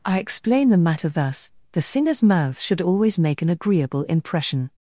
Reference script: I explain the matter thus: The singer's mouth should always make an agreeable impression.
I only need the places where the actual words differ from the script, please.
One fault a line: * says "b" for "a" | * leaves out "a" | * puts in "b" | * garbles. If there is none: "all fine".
all fine